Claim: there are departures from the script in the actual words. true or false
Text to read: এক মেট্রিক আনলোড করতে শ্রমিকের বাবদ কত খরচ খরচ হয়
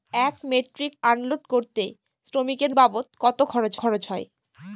false